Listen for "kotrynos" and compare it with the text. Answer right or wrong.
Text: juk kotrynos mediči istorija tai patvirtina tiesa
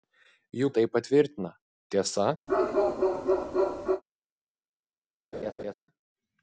wrong